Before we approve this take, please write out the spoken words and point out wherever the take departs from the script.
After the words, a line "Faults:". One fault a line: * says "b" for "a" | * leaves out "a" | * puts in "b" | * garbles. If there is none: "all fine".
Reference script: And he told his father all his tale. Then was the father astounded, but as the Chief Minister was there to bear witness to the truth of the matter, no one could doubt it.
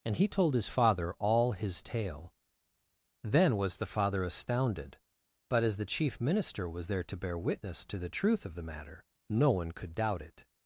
And he told his father all his tale. Then was the father astounded, but as the Chief Minister was there to bear witness to the truth of the matter, no one could doubt it.
Faults:
all fine